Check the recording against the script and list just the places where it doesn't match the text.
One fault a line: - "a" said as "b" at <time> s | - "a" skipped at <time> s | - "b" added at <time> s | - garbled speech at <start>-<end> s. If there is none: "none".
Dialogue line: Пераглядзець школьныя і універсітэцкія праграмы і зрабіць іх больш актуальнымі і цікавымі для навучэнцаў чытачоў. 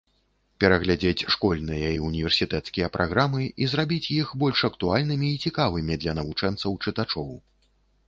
none